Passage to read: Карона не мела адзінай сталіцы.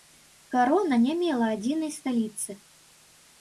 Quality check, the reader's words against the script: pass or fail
pass